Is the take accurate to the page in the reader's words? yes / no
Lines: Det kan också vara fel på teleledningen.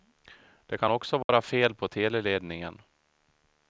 yes